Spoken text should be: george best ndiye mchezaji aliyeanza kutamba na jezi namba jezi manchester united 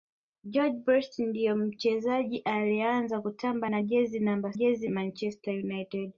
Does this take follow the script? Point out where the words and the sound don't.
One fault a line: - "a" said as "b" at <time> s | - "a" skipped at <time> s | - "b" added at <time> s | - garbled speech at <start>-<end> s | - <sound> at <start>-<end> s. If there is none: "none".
none